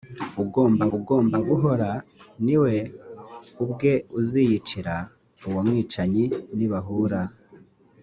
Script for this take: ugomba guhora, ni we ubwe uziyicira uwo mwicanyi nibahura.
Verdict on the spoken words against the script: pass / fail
fail